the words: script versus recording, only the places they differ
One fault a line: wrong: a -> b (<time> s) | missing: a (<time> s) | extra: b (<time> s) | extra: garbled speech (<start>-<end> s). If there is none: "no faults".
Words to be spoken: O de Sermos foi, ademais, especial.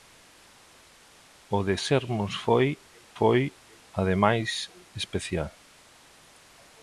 extra: foi (3.2 s)